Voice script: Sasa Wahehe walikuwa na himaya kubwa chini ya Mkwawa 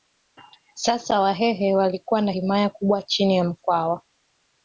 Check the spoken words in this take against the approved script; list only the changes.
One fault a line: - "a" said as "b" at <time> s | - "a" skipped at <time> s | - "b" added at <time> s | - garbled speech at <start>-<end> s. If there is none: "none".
none